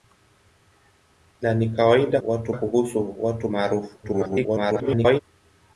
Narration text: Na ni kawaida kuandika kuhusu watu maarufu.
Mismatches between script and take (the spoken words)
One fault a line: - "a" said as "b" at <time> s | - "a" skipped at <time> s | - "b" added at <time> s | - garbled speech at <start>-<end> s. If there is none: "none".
- "kuandika" said as "watu" at 2.2 s
- garbled speech at 4.0-5.2 s